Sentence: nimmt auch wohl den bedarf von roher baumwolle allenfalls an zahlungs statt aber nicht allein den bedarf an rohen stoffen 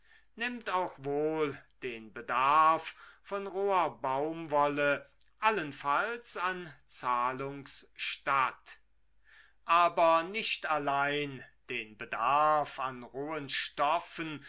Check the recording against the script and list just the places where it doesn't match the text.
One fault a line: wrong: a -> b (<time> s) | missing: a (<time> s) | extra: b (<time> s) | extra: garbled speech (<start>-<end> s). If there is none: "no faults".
no faults